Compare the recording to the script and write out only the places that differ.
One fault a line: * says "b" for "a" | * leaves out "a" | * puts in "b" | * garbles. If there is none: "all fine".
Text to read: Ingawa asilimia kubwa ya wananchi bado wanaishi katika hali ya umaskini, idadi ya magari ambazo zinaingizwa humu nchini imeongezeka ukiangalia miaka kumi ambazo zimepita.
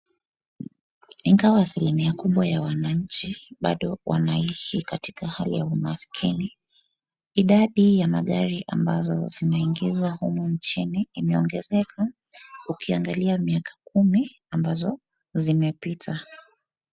all fine